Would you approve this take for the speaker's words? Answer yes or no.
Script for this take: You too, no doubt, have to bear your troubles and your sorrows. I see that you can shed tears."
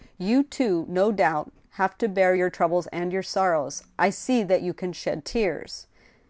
yes